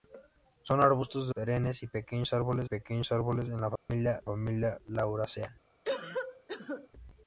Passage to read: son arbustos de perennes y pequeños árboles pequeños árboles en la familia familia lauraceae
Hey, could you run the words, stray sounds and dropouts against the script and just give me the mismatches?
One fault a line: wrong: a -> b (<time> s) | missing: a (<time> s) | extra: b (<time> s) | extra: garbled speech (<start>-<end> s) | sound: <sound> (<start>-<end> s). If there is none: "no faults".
sound: dropout (3.8-3.9 s)
sound: cough (5.8-6.9 s)